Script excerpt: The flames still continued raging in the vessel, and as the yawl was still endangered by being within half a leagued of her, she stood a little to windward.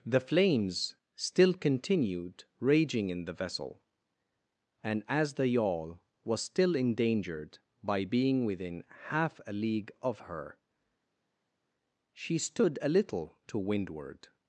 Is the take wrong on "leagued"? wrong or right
wrong